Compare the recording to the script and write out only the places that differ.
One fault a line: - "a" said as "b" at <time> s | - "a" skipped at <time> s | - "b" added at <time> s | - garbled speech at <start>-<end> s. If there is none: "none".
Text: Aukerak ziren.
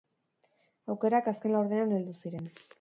- "azken laurdenean heldu" added at 1.3 s